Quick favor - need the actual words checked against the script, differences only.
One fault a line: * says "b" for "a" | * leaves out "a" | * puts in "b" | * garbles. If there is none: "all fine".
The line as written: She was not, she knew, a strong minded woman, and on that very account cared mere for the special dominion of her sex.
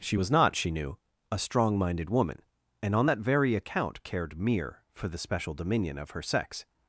all fine